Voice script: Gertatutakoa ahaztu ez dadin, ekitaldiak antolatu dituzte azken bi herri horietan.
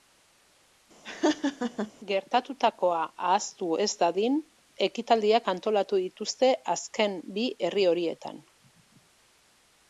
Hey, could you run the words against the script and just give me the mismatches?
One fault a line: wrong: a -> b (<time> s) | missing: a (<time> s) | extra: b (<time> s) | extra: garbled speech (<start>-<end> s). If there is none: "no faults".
no faults